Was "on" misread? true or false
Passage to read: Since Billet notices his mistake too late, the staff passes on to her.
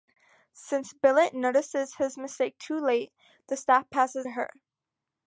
true